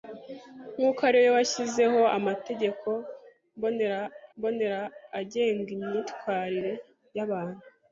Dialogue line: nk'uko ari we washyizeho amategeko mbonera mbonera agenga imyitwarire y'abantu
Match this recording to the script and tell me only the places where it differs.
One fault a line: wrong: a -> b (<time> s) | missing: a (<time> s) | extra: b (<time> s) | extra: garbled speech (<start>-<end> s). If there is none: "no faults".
no faults